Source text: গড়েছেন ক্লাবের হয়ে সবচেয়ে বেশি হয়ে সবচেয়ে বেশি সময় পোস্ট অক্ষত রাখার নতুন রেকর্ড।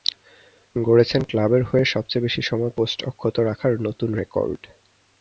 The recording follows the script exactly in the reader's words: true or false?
false